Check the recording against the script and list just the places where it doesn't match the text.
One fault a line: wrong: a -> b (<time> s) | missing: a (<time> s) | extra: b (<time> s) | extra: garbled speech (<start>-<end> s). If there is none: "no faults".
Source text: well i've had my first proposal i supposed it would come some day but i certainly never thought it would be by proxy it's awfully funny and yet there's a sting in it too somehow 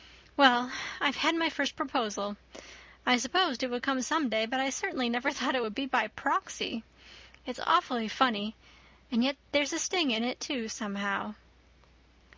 no faults